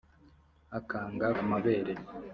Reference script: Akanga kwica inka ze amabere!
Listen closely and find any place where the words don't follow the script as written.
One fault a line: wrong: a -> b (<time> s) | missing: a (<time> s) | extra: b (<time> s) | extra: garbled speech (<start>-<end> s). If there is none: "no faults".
missing: kwica inka ze (1.3 s)